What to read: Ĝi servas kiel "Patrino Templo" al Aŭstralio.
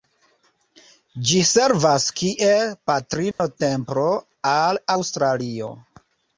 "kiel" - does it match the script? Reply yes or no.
yes